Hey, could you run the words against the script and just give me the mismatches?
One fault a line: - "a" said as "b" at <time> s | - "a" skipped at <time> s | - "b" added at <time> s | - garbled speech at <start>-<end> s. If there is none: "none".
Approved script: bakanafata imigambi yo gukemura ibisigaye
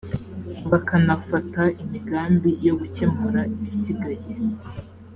none